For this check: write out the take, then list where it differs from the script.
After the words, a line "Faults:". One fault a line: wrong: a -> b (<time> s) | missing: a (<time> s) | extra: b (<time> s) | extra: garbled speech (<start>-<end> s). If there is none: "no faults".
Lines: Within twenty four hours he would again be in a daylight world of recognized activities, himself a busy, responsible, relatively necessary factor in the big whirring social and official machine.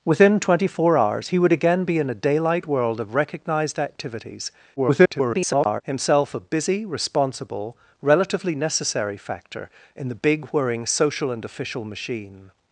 Within twenty four hours he would again be in a daylight world of recognized activities, [garbled] himself a busy, responsible, relatively necessary factor in the big whirring social and official machine.
Faults:
extra: garbled speech (4.8-5.8 s)